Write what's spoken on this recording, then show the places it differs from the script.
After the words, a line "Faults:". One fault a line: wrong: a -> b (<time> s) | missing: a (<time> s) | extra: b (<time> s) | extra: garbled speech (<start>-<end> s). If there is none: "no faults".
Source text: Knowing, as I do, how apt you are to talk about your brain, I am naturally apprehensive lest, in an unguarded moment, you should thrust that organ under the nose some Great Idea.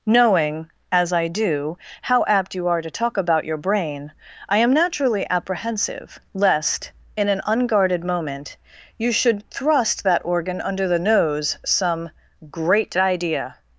Knowing, as I do, how apt you are to talk about your brain, I am naturally apprehensive lest, in an unguarded moment, you should thrust that organ under the nose some Great Idea.
Faults:
no faults